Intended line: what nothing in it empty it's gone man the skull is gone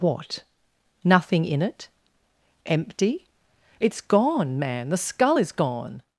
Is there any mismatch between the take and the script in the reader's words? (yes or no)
no